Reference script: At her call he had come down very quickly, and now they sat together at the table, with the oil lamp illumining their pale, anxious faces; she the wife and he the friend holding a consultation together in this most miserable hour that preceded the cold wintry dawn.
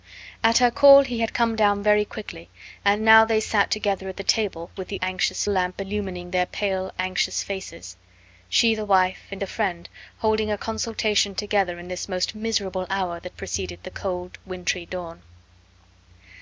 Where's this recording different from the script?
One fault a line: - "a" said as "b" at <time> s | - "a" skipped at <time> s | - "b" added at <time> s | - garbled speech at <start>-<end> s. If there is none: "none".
- "oil" said as "anxious" at 5.0 s
- "he" skipped at 9.4 s